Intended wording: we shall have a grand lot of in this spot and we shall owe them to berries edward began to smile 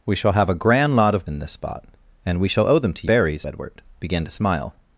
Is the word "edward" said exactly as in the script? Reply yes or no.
yes